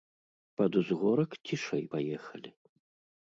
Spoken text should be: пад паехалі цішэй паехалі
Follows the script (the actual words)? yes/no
no